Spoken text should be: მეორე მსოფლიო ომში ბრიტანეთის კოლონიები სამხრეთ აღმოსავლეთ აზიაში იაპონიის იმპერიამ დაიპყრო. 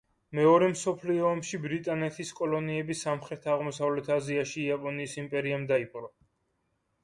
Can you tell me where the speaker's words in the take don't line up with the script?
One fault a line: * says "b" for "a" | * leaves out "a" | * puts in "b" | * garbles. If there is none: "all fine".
all fine